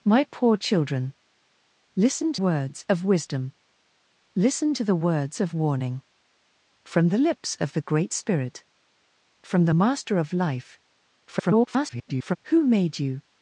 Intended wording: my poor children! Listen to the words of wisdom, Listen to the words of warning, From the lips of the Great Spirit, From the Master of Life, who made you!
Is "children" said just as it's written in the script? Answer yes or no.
yes